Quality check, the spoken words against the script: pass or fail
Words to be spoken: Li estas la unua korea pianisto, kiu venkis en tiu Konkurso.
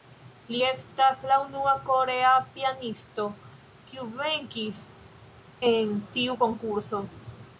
pass